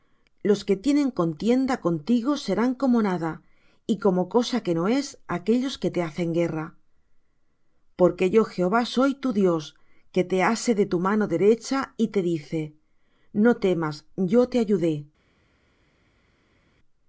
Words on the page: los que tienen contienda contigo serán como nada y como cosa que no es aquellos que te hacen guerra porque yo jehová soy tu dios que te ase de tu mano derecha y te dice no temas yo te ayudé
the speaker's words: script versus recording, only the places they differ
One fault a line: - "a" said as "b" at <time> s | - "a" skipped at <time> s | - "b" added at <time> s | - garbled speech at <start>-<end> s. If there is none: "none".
none